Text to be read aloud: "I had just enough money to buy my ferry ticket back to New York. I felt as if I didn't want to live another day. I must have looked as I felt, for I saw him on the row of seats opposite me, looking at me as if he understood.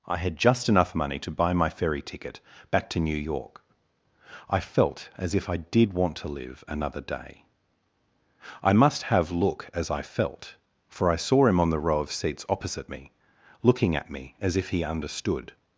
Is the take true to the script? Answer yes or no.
no